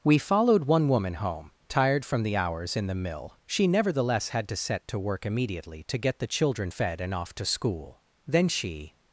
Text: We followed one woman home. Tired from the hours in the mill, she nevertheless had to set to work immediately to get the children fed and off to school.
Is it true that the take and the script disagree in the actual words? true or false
true